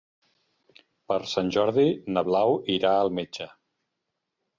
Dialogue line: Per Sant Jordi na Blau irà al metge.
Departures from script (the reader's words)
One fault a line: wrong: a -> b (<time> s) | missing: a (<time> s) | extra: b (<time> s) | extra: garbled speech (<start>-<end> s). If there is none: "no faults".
no faults